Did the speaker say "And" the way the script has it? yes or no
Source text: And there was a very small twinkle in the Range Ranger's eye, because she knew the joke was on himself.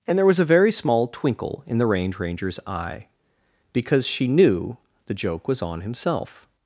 yes